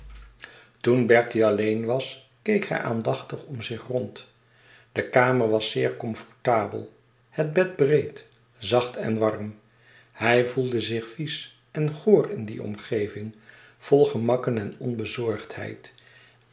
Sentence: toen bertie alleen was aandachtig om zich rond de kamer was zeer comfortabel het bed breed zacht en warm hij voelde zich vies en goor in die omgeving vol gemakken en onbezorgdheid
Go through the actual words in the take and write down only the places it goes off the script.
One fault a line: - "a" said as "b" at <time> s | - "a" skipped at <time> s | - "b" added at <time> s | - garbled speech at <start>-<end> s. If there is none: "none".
- "keek hij" added at 2.4 s